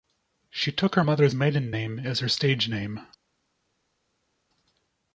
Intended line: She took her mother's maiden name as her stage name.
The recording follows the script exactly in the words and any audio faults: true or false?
true